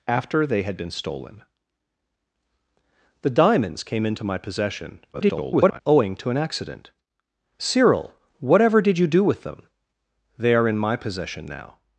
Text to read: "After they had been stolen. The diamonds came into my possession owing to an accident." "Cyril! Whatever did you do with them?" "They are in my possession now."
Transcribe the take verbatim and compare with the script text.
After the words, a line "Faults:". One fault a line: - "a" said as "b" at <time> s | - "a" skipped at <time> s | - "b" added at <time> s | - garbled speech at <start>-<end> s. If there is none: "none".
"After they had been stolen. The diamonds came into my possession [garbled] owing to an accident." "Cyril! Whatever did you do with them?" "They are in my possession now."
Faults:
- garbled speech at 5.1-5.8 s